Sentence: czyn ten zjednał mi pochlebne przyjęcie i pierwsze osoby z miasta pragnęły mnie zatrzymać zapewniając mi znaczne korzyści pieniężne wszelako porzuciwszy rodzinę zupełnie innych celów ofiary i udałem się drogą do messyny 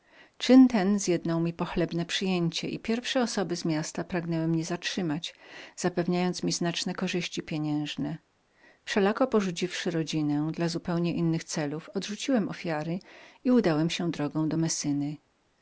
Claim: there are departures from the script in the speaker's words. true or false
true